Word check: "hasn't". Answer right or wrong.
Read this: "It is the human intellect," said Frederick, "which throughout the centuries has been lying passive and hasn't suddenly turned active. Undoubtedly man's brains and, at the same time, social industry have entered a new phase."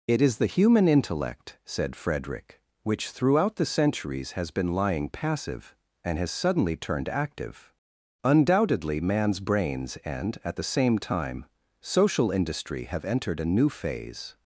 wrong